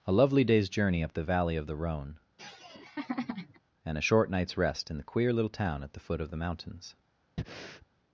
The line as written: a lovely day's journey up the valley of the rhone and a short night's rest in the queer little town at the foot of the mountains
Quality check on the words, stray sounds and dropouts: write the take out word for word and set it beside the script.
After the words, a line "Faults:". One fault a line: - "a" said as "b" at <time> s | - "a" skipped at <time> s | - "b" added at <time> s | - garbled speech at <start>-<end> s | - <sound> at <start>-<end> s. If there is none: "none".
a lovely day's journey up the valley of the rhone and a short night's rest in the queer little town at the foot of the mountains
Faults:
- laugh at 2.4-3.6 s
- breath at 7.4-7.9 s